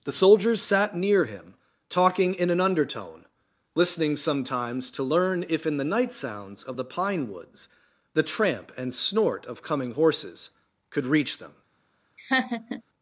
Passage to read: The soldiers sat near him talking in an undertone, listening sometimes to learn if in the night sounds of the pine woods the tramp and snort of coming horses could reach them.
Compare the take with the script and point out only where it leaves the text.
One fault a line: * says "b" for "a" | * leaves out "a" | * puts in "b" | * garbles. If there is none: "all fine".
all fine